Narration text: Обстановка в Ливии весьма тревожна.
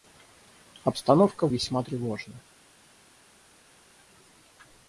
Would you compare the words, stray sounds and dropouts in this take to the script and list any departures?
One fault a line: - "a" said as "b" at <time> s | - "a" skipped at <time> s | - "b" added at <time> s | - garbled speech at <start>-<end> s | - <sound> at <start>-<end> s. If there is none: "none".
- "Ливии" skipped at 1.5 s